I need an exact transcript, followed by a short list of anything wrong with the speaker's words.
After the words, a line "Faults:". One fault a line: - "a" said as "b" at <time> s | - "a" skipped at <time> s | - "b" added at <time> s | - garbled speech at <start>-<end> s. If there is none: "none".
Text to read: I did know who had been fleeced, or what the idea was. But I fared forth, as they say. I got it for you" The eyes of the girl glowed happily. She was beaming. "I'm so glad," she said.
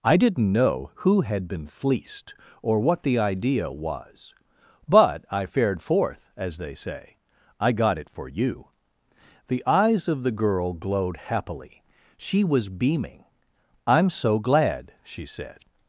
I didn't know who had been fleeced, or what the idea was. But I fared forth, as they say. I got it for you" The eyes of the girl glowed happily. She was beaming. "I'm so glad," she said.
Faults:
- "did" said as "didn't" at 0.2 s